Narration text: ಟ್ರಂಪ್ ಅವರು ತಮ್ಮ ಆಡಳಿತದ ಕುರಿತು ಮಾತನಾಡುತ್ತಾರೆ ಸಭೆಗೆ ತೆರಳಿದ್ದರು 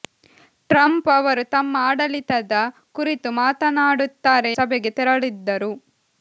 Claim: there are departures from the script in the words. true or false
false